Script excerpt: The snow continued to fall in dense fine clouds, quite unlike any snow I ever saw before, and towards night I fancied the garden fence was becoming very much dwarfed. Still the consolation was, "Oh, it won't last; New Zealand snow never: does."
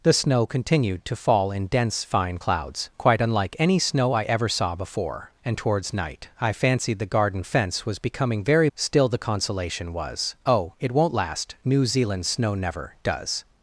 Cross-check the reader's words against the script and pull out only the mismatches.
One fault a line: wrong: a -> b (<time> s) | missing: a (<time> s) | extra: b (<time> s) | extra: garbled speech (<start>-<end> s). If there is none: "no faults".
missing: much dwarfed (8.7 s)